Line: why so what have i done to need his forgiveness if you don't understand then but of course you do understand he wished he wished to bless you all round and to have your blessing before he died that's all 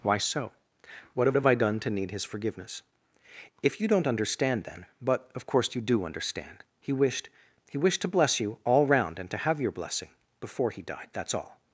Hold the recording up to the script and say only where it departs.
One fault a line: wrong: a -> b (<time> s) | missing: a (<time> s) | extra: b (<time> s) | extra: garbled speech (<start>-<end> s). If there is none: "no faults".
extra: have (1.4 s)